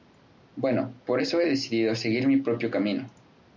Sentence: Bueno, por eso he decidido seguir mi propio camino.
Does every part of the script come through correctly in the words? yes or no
yes